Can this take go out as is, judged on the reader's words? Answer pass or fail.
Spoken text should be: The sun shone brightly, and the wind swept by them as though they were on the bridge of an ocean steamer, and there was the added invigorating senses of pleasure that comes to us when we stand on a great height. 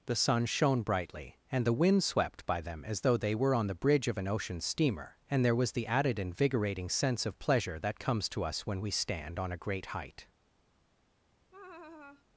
fail